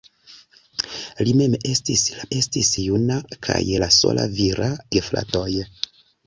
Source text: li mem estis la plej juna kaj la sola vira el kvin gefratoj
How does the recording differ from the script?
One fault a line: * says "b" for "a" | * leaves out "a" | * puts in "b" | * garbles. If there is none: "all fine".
* says "estis" for "plej"
* leaves out "el kvin"